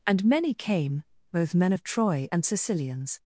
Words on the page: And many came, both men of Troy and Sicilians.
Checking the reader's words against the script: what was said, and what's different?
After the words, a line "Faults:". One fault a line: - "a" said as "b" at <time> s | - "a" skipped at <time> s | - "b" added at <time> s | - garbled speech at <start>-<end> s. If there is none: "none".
And many came, both men of Troy and Sicilians.
Faults:
none